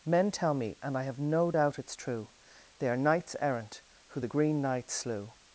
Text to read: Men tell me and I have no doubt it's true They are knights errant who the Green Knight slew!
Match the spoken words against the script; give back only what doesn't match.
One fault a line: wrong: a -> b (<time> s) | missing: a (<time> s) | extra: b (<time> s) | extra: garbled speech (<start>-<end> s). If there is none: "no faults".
no faults